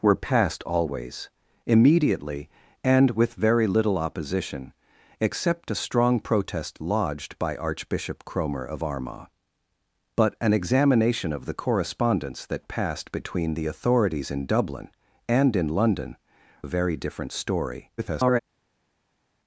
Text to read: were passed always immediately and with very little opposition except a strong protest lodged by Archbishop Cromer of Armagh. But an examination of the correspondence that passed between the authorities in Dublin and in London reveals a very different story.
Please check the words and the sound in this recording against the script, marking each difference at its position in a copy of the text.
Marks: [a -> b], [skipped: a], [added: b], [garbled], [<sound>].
were passed always immediately and with very little opposition except a strong protest lodged by Archbishop Cromer of Armagh. But an examination of the correspondence that passed between the authorities in Dublin and in London [skipped: reveals] a very different story. [garbled]